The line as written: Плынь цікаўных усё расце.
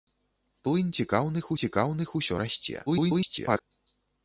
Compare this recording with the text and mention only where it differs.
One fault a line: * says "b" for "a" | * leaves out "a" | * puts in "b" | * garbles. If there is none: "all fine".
* puts in "цікаўных"
* garbles